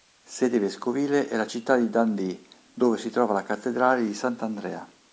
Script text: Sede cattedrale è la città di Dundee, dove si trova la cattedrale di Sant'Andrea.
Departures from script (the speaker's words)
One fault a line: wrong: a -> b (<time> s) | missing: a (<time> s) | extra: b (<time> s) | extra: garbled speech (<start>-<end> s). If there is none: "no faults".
wrong: cattedrale -> vescovile (0.6 s)